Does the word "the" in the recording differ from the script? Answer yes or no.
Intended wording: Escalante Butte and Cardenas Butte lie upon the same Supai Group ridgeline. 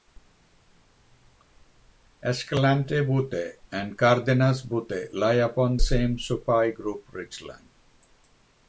yes